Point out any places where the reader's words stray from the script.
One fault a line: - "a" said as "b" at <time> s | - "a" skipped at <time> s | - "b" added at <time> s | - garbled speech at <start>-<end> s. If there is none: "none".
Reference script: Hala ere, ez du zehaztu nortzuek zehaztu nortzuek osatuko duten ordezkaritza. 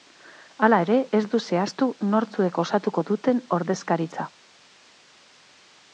- "zehaztu nortzuek" skipped at 2.6 s